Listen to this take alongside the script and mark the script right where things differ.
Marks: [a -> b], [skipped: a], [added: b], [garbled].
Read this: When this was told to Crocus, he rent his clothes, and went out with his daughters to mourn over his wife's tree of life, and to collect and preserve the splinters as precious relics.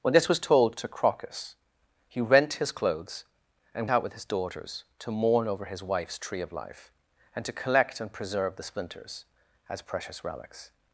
When this was told to Crocus, he rent his clothes, and [skipped: went] out with his daughters to mourn over his wife's tree of life, and to collect and preserve the splinters as precious relics.